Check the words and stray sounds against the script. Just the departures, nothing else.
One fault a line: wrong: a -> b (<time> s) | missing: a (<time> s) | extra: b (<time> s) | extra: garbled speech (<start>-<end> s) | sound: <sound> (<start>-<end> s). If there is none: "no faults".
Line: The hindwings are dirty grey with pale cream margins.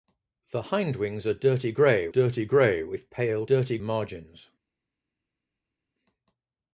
extra: dirty grey (2.1 s)
wrong: cream -> dirty (3.4 s)